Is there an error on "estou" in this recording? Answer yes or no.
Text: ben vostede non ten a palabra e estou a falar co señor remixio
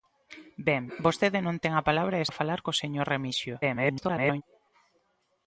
yes